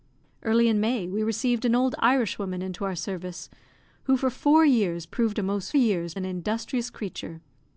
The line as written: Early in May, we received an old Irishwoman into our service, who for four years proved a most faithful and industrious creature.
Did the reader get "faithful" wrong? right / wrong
wrong